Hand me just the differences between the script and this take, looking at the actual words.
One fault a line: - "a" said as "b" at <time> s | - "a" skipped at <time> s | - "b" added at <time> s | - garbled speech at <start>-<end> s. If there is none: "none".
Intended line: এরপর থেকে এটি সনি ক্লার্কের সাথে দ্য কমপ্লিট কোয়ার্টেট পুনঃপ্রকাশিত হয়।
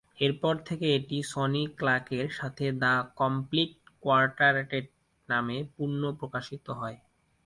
- "নামে" added at 5.3 s